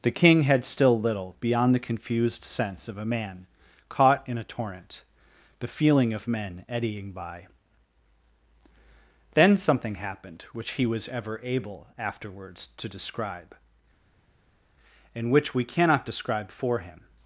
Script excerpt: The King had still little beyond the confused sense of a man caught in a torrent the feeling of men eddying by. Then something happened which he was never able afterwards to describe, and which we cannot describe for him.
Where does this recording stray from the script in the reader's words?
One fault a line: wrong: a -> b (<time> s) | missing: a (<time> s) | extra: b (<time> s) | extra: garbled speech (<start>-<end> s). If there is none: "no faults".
wrong: never -> ever (11.1 s)